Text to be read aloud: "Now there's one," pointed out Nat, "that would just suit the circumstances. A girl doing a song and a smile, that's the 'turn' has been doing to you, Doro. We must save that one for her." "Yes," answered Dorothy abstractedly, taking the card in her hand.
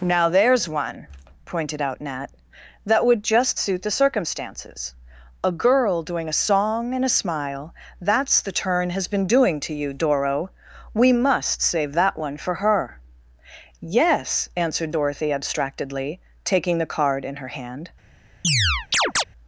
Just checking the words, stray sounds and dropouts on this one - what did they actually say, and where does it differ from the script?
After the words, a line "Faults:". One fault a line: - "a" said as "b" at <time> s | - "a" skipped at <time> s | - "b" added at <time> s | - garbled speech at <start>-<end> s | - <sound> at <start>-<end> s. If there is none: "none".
"Now there's one," pointed out Nat, "that would just suit the circumstances. A girl doing a song and a smile, that's the 'turn' has been doing to you, Doro. We must save that one for her." "Yes," answered Dorothy abstractedly, taking the card in her hand.
Faults:
- chirp at 18.4-19.2 s